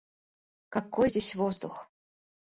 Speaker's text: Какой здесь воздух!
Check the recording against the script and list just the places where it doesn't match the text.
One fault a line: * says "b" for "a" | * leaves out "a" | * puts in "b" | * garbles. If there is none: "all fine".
all fine